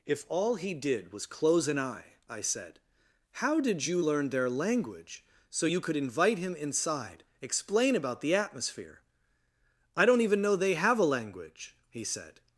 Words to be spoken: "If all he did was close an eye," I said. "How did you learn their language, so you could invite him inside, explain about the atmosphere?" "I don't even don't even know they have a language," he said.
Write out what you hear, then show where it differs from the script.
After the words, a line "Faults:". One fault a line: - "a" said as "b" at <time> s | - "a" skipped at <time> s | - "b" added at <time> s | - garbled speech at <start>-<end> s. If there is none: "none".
"If all he did was close an eye," I said. "How did you learn their language, so you could invite him inside, explain about the atmosphere?" "I don't even know they have a language," he said.
Faults:
- "don't even" skipped at 10.4 s